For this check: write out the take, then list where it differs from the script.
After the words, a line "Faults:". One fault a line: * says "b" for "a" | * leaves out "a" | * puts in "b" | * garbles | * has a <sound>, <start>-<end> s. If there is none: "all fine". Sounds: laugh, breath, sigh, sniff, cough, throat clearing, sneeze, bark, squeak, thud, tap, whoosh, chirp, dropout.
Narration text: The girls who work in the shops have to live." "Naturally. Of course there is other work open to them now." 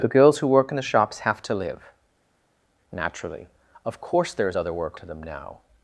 The girls who work in the shops have to live." "Naturally. Of course there is other work to them now."
Faults:
* leaves out "open"